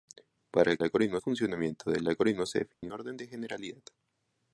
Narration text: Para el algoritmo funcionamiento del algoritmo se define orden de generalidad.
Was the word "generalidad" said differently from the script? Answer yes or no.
no